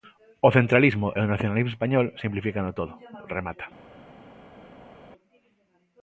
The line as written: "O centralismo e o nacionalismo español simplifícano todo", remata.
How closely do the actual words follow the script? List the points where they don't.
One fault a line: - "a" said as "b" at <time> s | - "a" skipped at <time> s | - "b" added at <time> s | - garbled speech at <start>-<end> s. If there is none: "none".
none